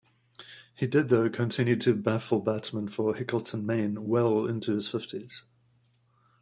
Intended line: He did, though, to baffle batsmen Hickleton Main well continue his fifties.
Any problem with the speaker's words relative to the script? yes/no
yes